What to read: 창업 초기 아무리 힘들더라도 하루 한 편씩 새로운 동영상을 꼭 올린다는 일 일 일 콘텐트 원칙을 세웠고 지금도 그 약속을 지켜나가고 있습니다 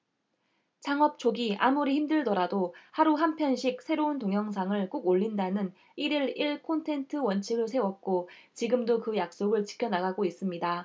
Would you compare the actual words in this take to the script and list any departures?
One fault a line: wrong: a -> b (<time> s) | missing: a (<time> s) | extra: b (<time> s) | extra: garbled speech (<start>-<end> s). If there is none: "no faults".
no faults